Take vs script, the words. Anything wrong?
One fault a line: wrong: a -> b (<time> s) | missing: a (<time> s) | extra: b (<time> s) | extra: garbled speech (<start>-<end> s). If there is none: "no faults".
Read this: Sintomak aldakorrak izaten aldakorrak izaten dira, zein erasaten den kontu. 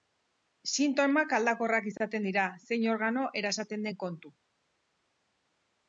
missing: aldakorrak izaten (2.3 s)
extra: organo (2.9 s)